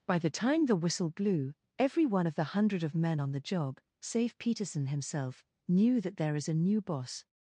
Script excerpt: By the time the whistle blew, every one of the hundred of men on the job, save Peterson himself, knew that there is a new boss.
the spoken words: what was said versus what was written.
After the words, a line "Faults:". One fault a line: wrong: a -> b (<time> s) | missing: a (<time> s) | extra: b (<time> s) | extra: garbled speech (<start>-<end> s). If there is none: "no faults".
By the time the whistle blew, every one of the hundred of men on the job, save Peterson himself, knew that there is a new boss.
Faults:
no faults